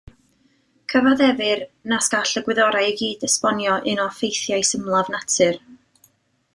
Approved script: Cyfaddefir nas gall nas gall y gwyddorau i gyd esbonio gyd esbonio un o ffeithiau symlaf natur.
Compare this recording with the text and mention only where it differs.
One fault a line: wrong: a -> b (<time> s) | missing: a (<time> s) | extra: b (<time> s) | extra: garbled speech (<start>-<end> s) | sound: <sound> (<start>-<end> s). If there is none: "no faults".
missing: nas gall (2.4 s)
missing: gyd esbonio (3.8 s)